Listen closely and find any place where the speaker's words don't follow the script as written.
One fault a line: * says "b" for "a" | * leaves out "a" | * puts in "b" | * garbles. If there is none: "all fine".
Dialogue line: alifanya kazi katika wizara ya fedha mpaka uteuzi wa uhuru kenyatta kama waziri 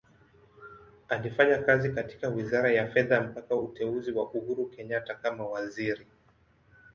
all fine